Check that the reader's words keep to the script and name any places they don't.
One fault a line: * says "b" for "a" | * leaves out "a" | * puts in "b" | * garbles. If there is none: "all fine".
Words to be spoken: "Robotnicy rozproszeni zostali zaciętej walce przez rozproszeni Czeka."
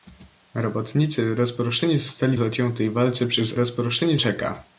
all fine